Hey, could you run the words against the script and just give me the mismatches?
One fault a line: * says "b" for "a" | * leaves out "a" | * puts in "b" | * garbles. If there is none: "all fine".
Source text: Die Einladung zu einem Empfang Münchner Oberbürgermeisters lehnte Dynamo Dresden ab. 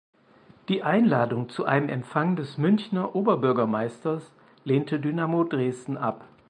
* puts in "des"